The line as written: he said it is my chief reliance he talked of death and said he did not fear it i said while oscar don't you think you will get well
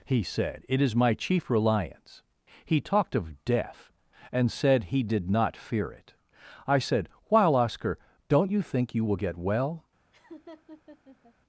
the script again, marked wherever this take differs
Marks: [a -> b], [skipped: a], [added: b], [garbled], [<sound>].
he said it is my chief reliance he talked of death and said he did not fear it i said while oscar don't you think you will get well [laugh]